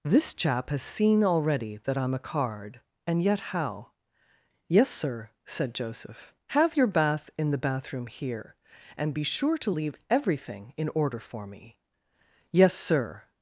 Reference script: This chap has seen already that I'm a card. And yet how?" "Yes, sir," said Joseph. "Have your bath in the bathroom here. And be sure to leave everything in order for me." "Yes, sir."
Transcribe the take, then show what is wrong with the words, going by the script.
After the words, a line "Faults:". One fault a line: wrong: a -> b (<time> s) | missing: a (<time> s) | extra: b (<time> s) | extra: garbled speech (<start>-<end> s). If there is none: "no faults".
This chap has seen already that I'm a card. And yet how?" "Yes, sir," said Joseph. "Have your bath in the bathroom here. And be sure to leave everything in order for me." "Yes, sir."
Faults:
no faults